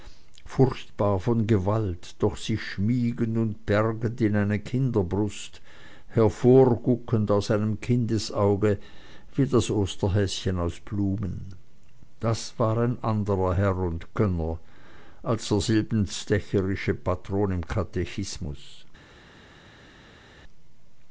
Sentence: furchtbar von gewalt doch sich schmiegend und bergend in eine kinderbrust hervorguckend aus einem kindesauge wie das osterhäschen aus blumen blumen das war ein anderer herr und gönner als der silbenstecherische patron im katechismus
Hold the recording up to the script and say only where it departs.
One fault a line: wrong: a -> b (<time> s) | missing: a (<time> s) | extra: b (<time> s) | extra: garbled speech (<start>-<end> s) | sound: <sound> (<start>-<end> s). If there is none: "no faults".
missing: blumen (11.5 s)